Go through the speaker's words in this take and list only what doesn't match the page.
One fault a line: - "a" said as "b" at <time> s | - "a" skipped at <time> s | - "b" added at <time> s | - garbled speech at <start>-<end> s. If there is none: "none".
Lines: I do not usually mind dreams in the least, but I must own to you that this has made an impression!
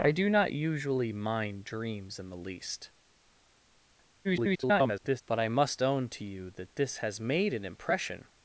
- garbled speech at 4.2-5.2 s